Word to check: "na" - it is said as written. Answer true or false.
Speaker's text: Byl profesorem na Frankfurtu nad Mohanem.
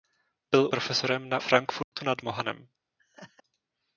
true